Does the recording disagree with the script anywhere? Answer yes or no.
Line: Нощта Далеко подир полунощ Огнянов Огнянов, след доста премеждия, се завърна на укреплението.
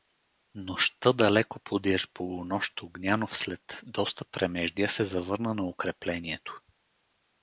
yes